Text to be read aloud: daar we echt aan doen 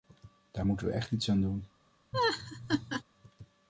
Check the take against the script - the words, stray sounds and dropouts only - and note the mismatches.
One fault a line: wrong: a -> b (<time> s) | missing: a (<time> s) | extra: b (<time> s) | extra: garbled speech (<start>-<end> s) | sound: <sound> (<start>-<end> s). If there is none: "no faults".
extra: moeten (0.7 s)
extra: iets (1.1 s)
sound: laugh (2.1-3.0 s)